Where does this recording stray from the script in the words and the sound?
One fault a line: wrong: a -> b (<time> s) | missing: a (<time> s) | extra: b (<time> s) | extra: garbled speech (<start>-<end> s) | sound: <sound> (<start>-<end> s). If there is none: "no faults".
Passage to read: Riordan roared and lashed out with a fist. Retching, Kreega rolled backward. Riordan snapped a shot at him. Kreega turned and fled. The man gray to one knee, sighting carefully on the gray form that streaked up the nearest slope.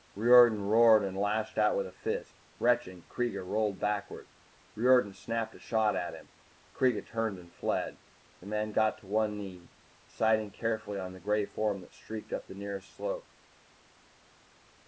wrong: gray -> got (8.7 s)